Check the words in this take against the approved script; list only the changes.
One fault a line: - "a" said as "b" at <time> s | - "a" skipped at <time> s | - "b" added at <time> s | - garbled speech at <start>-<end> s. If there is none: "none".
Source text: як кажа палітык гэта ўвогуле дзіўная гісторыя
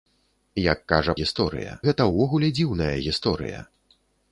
- "палітык" said as "гісторыя" at 1.2 s